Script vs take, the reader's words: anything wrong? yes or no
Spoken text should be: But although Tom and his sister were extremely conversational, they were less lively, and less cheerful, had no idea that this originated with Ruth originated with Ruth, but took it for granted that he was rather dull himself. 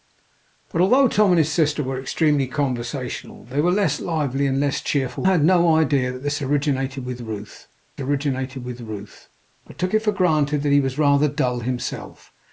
no